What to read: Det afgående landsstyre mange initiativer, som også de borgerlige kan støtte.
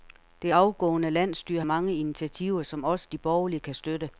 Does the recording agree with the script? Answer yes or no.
yes